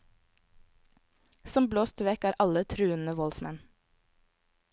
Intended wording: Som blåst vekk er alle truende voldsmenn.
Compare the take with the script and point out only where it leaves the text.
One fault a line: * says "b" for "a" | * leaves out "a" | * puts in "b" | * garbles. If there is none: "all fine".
all fine